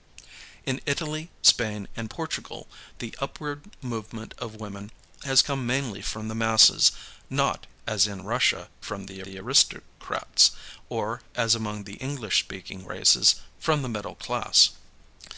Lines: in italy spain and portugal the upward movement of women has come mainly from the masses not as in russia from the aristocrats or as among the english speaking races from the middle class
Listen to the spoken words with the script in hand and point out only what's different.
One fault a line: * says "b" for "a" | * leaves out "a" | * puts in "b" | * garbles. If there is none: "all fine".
* puts in "the"